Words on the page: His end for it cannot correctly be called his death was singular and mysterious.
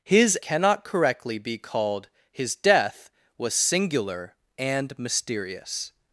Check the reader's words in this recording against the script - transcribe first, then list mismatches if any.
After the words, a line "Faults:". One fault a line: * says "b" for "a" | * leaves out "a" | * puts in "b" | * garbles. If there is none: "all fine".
His cannot correctly be called his death was singular and mysterious.
Faults:
* leaves out "end for it"